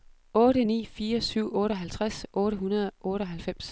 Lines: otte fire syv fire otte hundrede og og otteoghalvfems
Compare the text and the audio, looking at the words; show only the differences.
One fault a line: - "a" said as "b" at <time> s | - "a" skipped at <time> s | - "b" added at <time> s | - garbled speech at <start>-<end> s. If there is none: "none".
- "ni" added at 0.6 s
- "fire" said as "otteoghalvtreds" at 1.6 s
- "og" skipped at 3.1 s